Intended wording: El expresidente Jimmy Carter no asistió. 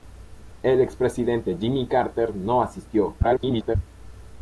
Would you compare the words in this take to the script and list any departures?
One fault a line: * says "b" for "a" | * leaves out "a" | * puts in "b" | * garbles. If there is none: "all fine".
* garbles